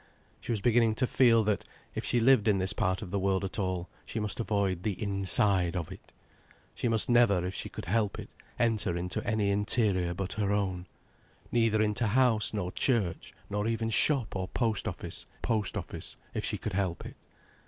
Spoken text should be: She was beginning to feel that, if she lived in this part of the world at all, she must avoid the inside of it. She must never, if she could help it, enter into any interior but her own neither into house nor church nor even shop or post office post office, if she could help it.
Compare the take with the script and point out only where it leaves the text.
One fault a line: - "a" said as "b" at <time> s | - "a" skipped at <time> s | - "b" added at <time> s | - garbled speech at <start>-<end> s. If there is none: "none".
none